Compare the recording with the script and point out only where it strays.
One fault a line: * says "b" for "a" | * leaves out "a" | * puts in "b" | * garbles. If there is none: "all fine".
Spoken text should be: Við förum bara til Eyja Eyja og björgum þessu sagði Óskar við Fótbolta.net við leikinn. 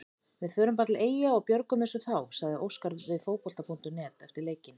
* leaves out "Eyja"
* puts in "þá"
* says "eftir" for "við"